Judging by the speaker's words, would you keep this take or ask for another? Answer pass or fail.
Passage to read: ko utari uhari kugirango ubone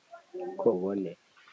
fail